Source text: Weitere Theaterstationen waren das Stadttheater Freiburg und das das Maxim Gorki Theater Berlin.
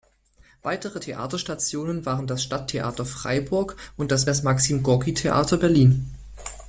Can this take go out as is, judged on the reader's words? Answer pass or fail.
pass